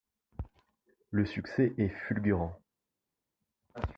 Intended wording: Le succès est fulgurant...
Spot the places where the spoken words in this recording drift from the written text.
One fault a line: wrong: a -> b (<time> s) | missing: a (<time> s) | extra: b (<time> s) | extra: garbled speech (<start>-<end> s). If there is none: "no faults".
no faults